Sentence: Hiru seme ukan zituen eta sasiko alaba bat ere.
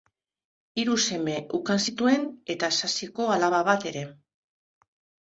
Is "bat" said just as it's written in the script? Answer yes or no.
yes